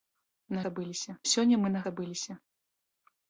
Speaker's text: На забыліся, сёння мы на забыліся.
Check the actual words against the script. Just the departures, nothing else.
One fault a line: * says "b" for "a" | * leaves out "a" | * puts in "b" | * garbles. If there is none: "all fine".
all fine